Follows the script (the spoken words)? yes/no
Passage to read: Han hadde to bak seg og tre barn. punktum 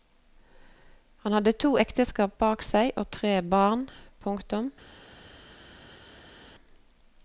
no